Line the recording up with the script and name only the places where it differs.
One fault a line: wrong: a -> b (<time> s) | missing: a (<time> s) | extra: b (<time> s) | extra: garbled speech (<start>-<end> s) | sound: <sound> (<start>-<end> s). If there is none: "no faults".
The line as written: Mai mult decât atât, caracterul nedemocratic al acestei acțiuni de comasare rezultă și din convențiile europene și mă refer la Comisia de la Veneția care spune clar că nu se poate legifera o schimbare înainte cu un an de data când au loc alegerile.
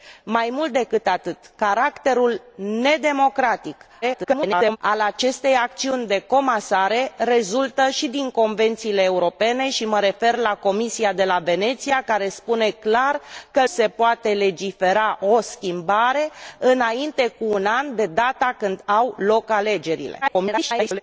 extra: garbled speech (4.0-4.8 s)
missing: nu (13.7 s)
extra: garbled speech (20.2-21.0 s)